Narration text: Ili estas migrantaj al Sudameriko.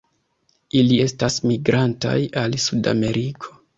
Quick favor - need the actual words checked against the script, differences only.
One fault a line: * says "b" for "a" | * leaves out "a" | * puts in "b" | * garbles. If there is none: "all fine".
all fine